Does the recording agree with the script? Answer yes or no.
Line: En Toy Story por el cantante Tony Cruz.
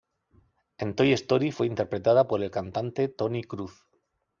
no